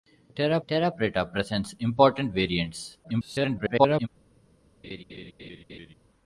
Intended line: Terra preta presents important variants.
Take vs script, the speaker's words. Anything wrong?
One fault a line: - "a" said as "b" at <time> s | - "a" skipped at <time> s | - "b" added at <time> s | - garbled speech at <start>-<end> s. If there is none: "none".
- "terra" added at 0.7 s
- garbled speech at 3.0-4.1 s